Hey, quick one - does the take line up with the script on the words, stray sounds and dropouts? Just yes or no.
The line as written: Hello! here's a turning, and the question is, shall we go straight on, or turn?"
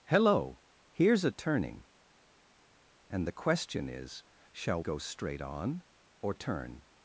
no